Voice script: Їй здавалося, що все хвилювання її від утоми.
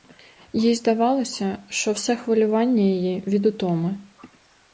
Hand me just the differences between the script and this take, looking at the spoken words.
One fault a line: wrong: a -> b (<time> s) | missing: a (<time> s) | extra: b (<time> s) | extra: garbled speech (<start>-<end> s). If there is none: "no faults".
no faults